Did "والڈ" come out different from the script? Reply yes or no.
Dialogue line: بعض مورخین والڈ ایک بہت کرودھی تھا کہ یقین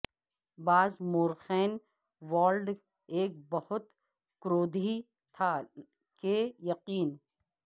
no